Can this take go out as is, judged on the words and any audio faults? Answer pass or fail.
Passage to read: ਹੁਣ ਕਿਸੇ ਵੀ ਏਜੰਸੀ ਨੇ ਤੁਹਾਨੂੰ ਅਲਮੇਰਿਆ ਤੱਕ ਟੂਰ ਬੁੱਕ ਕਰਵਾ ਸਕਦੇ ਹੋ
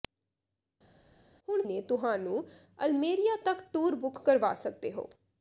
fail